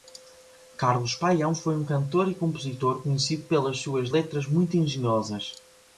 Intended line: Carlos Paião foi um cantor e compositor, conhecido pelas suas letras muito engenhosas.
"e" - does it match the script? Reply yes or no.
yes